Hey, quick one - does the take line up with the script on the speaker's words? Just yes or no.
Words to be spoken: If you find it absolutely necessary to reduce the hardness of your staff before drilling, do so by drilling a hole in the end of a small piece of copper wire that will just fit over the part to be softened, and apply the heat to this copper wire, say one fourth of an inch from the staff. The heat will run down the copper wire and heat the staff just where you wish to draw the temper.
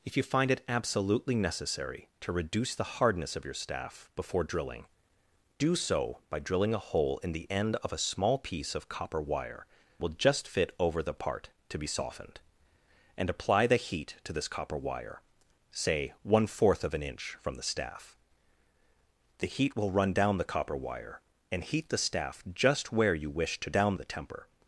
no